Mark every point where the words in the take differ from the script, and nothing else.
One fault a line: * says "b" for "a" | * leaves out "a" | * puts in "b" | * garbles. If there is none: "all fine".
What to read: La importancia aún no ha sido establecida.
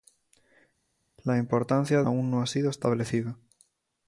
all fine